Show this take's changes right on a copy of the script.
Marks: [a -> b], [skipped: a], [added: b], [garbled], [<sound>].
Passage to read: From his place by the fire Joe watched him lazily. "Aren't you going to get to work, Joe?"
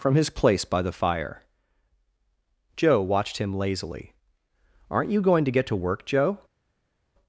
From his place by the fire Joe watched him lazily. "Aren't you going to get to work, Joe?"